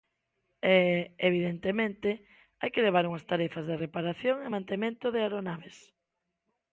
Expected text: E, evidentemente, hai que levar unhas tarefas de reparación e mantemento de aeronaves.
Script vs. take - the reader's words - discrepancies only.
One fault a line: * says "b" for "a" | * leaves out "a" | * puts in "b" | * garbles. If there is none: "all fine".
all fine